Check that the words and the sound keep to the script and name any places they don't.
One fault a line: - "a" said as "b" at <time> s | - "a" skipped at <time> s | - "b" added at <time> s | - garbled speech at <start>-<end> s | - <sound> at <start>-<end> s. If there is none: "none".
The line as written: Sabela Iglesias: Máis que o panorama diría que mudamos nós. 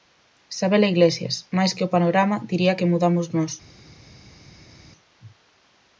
none